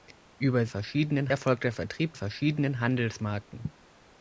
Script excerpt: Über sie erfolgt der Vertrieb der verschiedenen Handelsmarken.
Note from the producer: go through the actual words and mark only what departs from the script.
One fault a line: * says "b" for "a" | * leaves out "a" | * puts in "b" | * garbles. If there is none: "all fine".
* says "verschiedenen" for "sie"
* leaves out "der"